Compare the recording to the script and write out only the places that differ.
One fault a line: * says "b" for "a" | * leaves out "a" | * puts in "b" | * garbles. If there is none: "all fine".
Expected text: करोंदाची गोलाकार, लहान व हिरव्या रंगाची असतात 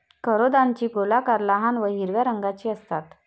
all fine